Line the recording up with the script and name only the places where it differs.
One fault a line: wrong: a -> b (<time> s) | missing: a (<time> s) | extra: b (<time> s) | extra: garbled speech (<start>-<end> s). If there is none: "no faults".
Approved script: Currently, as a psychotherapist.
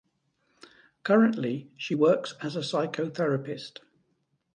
extra: she works (1.8 s)